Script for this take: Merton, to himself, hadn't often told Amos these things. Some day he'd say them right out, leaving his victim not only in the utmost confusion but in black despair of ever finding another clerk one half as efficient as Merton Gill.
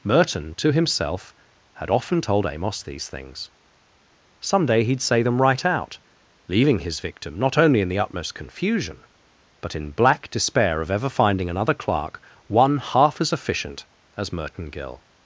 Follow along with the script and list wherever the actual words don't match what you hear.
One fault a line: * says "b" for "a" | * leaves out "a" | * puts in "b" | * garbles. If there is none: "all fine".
* says "had" for "hadn't"